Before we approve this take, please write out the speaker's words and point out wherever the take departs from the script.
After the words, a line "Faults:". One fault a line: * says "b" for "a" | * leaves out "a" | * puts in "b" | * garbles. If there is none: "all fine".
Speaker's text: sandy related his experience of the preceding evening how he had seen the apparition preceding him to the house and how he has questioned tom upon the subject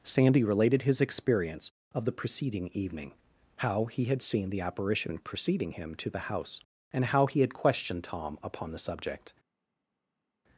sandy related his experience of the preceding evening how he had seen the apparition preceding him to the house and how he had questioned tom upon the subject
Faults:
* says "had" for "has"